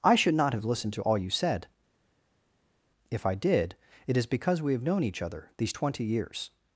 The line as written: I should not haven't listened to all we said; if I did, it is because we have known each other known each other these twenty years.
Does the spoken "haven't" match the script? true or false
false